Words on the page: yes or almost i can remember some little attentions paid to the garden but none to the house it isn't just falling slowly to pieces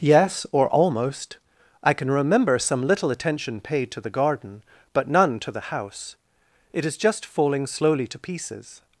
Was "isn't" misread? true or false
true